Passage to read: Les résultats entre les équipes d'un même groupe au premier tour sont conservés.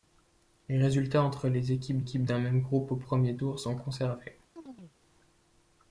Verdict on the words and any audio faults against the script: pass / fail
fail